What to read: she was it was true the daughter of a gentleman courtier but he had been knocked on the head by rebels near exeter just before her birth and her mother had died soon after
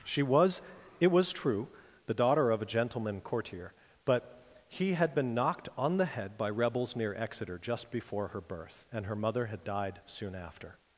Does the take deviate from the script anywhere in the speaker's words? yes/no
no